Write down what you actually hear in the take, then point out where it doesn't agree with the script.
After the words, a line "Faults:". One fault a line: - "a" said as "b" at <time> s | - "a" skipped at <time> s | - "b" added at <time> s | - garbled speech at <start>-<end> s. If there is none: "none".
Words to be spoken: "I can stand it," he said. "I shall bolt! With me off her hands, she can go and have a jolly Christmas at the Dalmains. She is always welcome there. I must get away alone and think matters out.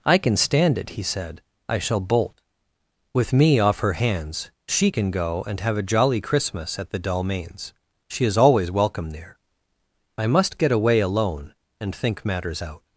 "I can stand it," he said. "I shall bolt! With me off her hands, she can go and have a jolly Christmas at the Dalmains. She is always welcome there. I must get away alone and think matters out.
Faults:
none